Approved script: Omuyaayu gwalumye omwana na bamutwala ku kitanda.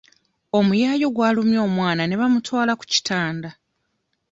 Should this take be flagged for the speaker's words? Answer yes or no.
yes